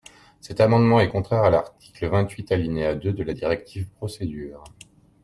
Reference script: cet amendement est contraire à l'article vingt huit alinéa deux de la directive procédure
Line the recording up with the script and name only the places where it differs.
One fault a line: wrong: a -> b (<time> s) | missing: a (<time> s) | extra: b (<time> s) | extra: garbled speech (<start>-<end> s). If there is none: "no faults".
no faults